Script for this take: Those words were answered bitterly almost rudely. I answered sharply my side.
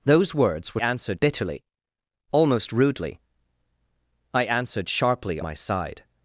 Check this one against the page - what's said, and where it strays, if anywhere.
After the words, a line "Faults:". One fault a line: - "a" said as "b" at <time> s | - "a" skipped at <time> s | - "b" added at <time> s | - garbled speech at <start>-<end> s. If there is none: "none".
Those words were answered bitterly almost rudely. I answered sharply my side.
Faults:
none